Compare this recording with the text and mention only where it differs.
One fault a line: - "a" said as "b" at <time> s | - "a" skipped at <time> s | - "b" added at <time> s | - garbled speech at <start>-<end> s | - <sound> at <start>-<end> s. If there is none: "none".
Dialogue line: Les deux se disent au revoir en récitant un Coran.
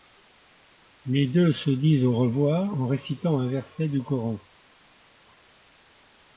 - "verset du" added at 3.5 s